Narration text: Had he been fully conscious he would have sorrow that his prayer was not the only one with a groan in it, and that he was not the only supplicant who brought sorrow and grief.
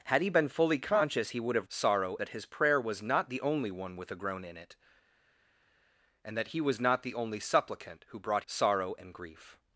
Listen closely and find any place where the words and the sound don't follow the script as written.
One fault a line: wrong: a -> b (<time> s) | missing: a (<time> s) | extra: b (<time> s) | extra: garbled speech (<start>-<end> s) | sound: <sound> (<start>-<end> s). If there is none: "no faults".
no faults